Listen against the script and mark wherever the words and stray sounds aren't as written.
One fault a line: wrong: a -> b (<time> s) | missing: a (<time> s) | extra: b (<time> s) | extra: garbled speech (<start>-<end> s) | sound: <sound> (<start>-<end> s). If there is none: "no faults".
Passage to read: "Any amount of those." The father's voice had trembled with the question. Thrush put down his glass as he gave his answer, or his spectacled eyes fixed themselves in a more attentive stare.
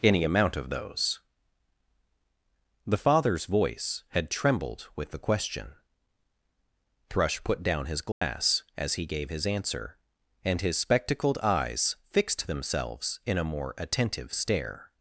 sound: dropout (8.1-8.2 s)
wrong: or -> and (10.4 s)